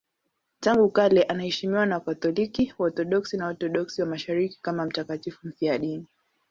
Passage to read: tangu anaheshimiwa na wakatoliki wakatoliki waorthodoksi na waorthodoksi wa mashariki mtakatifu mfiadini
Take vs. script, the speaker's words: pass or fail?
fail